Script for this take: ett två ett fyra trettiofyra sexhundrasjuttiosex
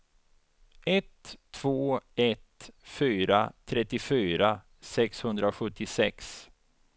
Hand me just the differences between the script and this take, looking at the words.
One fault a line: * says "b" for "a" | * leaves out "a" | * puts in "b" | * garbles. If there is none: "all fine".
all fine